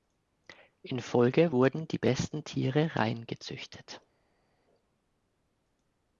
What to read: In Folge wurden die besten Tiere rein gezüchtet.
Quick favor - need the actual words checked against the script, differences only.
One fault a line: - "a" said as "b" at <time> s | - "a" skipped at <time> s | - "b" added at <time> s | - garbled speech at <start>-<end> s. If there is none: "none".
none